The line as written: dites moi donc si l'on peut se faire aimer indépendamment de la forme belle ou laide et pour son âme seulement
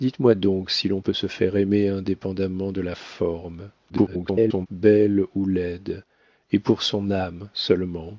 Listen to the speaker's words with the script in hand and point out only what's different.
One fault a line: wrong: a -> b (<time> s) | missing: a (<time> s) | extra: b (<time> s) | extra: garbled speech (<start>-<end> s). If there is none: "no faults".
extra: garbled speech (3.9-4.7 s)